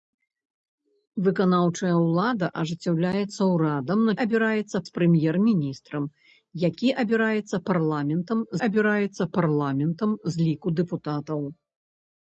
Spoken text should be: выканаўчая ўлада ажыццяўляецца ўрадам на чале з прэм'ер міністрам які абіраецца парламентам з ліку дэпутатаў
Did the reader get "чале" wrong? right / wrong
wrong